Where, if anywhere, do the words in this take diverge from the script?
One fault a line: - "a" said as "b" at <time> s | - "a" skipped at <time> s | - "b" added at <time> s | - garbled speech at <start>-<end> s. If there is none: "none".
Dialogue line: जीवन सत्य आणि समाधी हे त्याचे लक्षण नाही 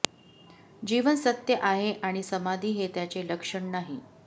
- "आहे" added at 1.6 s